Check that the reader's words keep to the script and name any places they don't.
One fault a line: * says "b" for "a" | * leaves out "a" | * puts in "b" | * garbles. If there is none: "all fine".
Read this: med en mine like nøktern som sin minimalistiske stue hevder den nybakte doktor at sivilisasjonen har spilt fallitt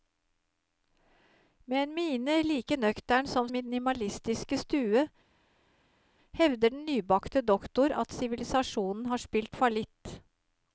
* leaves out "sin"